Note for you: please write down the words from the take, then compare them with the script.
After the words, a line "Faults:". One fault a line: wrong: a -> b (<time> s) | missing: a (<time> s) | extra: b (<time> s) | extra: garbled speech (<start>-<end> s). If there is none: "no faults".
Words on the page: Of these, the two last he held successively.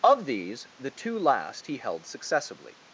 Of these, the two last he held successively.
Faults:
no faults